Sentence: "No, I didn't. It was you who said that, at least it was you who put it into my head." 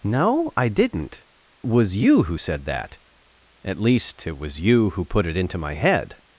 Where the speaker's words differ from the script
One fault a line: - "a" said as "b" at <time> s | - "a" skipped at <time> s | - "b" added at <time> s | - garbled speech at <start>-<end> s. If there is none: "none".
- "It" skipped at 1.2 s